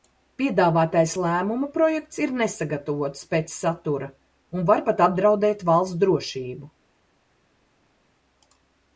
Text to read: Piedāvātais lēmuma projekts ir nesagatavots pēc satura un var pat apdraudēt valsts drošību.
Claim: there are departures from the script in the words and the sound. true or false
false